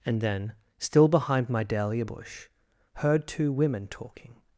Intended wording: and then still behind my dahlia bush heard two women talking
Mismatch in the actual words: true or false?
false